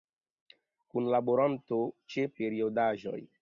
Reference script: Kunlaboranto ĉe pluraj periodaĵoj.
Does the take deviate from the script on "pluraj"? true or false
true